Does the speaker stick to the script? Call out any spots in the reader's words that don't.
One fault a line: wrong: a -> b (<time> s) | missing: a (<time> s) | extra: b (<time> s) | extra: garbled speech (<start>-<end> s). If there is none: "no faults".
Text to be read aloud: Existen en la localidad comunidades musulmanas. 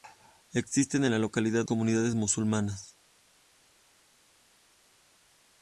no faults